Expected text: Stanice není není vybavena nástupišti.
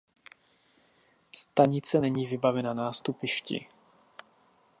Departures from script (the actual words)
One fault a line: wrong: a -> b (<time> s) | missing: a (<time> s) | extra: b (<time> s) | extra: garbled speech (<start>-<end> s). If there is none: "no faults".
missing: není (2.3 s)